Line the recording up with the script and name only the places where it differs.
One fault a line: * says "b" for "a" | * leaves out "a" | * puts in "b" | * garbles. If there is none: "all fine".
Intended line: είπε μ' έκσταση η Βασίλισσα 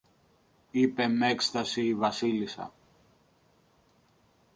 all fine